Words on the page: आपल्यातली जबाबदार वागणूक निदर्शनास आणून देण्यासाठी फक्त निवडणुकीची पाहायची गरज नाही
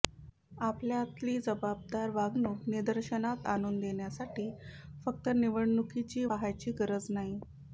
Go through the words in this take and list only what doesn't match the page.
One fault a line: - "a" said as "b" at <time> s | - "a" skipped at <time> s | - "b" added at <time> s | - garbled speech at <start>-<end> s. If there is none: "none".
none